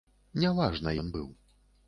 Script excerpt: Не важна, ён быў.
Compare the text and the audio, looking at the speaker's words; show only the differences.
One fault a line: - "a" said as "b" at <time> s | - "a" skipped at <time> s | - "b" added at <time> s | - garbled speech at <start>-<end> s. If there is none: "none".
none